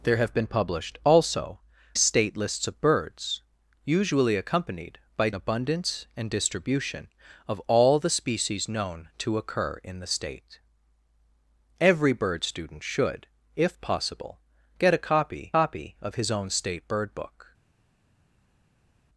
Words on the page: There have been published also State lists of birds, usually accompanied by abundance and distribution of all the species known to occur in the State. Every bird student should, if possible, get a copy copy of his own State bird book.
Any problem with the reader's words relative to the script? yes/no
no